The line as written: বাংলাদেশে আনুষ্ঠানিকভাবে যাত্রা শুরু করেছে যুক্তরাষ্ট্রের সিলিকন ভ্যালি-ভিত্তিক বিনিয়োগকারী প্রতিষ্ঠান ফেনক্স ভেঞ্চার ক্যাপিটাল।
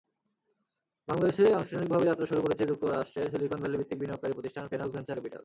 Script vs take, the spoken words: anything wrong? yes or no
no